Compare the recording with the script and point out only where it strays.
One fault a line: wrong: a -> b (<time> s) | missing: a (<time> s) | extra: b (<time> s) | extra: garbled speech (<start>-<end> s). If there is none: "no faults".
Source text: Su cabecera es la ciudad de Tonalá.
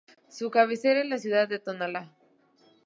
no faults